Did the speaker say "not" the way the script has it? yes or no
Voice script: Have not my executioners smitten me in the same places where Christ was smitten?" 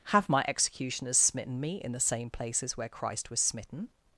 no